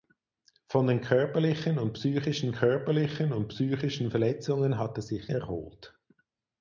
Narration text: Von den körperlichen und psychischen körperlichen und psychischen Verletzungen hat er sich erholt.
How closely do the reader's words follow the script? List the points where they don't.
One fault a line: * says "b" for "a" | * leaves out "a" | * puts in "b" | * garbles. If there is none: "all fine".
all fine